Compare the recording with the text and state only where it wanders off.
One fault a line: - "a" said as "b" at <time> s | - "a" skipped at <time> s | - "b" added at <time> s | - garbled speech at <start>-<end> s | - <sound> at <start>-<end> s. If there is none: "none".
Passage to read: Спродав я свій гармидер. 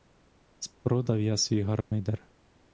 - dropout at 1.8-1.9 s